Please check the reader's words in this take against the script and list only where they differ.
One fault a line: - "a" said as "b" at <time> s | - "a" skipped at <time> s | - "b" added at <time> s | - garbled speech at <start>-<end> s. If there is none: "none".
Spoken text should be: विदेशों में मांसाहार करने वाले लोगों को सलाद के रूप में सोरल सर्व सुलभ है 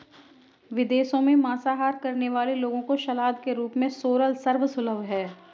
none